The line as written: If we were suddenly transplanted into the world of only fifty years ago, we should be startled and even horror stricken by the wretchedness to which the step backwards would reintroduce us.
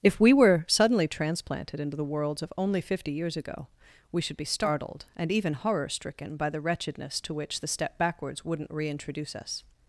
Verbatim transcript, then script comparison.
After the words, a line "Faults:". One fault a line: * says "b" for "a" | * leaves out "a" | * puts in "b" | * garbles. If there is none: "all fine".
If we were suddenly transplanted into the worlds of only fifty years ago, we should be startled and even horror stricken by the wretchedness to which the step backwards wouldn't reintroduce us.
Faults:
* says "worlds" for "world"
* says "wouldn't" for "would"